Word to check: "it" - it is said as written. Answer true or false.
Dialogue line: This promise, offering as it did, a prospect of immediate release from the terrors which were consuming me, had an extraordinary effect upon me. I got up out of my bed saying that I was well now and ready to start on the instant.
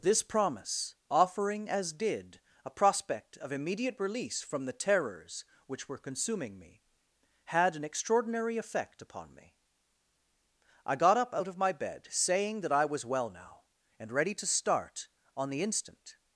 false